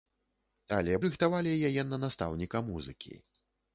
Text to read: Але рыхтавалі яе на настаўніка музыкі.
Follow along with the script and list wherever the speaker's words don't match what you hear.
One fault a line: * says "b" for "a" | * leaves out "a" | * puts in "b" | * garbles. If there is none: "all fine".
all fine